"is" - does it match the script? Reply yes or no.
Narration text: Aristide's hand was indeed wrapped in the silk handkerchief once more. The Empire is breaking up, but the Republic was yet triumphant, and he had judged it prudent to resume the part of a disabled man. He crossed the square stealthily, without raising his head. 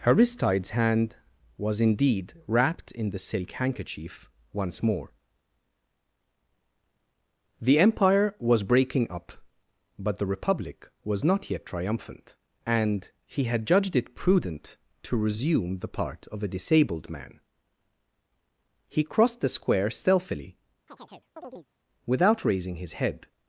no